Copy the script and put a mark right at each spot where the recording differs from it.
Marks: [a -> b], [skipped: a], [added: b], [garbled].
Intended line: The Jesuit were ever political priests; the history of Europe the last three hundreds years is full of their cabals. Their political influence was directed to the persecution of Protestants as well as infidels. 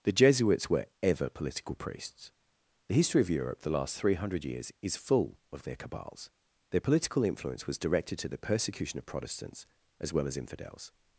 The [Jesuit -> Jesuits] were ever political priests; the history of Europe the last three [hundreds -> hundred] years is full of their cabals. Their political influence was directed to the persecution of Protestants as well as infidels.